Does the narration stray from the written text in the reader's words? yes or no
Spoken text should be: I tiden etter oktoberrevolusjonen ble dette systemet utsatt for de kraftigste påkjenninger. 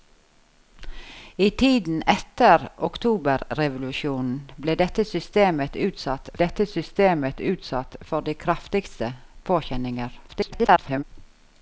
yes